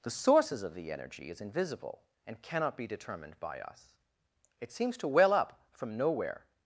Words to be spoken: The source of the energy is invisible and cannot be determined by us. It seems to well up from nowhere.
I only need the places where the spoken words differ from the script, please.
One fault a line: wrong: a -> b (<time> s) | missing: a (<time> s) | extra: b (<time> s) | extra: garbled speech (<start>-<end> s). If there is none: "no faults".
wrong: source -> sources (0.1 s)